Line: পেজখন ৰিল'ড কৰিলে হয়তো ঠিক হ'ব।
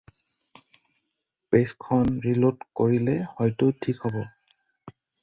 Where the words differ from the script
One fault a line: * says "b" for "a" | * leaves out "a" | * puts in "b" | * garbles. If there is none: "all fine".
all fine